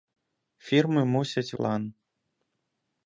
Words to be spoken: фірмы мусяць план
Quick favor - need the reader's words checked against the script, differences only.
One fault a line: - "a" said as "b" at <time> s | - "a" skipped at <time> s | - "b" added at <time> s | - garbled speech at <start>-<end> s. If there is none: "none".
none